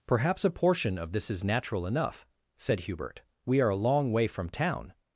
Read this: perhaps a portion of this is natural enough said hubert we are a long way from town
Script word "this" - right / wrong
right